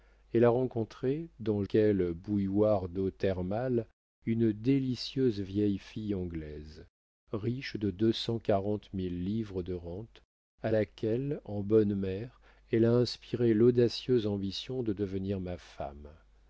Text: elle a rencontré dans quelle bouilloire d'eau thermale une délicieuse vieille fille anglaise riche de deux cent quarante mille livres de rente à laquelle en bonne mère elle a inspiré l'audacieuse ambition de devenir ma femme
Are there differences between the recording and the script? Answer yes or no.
no